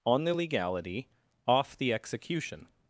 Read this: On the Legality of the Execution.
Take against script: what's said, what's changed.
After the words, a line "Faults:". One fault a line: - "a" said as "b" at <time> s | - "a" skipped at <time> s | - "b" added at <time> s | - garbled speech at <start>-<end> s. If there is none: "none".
On the Legality off the Execution.
Faults:
- "of" said as "off" at 1.5 s